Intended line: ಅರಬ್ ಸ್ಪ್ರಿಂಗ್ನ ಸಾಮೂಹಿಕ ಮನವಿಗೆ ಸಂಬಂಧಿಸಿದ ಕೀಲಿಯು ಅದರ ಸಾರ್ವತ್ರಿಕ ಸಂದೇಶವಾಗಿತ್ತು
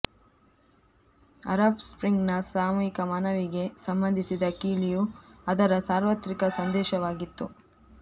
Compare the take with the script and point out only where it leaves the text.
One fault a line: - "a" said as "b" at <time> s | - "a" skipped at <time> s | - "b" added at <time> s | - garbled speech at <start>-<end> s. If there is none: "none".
none